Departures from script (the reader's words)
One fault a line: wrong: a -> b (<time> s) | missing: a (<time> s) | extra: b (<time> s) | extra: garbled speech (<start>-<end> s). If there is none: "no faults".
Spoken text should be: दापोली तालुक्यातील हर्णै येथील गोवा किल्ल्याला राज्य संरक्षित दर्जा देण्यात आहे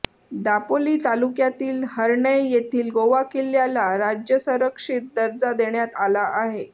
extra: आला (6.0 s)